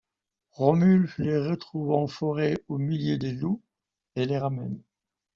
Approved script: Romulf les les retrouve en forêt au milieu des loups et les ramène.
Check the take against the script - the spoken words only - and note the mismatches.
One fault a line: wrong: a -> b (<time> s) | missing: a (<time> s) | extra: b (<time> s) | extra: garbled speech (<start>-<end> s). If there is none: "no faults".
missing: les (1.4 s)